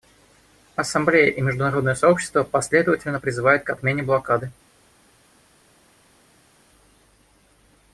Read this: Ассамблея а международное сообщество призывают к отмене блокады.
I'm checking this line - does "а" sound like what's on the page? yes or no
no